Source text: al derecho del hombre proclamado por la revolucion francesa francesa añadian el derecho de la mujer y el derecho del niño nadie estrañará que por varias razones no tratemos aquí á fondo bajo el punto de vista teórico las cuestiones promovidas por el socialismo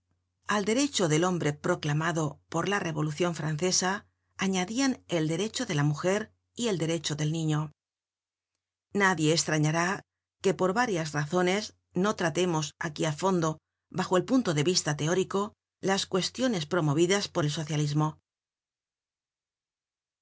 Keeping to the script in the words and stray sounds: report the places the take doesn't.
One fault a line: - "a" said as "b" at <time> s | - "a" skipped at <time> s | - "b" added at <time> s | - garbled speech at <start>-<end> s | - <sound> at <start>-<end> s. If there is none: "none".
- "francesa" skipped at 4.0 s